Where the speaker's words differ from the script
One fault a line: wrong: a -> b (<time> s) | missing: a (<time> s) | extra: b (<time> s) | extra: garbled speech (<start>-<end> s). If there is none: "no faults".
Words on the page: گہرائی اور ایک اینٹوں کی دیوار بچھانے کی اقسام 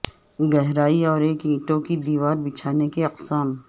no faults